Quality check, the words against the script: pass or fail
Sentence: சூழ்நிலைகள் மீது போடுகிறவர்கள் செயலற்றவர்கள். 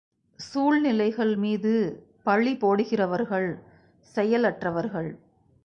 fail